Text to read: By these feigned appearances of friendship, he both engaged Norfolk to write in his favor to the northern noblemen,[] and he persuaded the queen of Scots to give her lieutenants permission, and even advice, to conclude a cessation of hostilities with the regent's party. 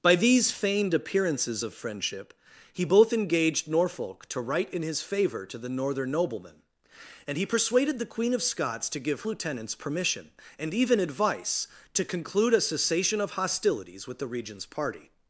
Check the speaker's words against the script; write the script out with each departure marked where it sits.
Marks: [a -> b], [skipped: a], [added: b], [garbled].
By these feigned appearances of friendship, he both engaged Norfolk to write in his favor to the northern noblemen,[] and he persuaded the queen of Scots to give [skipped: her] lieutenants permission, and even advice, to conclude a cessation of hostilities with the regent's party.